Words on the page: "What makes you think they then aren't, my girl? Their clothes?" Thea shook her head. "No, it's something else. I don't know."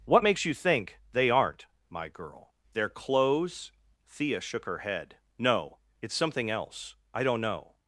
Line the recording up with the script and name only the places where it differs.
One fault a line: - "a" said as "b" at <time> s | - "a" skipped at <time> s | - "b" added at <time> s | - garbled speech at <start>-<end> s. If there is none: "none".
- "then" skipped at 1.3 s